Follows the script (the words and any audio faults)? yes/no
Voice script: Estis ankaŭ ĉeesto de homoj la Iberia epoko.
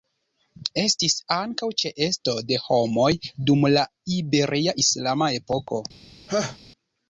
no